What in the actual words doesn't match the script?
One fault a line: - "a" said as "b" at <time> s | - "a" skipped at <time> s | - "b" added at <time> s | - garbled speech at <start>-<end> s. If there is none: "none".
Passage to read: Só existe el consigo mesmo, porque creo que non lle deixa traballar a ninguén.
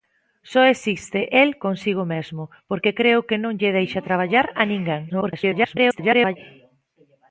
- garbled speech at 5.1-6.4 s